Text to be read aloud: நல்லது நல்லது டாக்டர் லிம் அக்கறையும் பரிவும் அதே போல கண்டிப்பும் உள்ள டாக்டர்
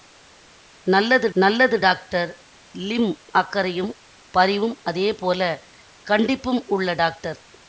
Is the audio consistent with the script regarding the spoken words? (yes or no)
yes